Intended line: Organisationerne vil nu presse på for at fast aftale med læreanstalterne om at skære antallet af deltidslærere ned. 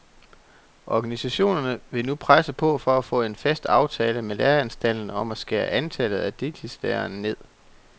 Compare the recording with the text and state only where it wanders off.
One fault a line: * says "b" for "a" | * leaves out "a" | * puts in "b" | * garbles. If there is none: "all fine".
* puts in "få en"